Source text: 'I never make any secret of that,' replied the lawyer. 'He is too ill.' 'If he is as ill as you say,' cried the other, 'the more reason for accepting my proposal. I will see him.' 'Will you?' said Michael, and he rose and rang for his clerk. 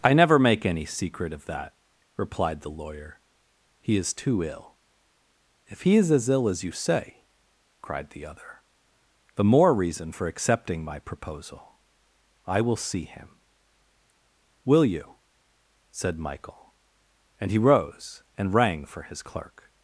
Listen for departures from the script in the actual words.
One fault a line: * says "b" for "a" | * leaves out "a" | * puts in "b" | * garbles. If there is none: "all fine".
all fine